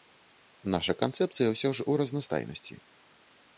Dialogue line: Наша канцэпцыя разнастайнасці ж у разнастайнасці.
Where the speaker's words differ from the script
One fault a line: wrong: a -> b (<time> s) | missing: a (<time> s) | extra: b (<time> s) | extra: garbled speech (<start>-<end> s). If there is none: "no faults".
wrong: разнастайнасці -> ўсё (1.5 s)